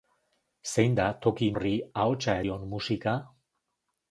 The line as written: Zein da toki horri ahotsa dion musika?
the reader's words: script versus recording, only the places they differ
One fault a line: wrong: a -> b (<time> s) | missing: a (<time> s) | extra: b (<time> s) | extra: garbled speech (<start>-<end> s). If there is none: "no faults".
no faults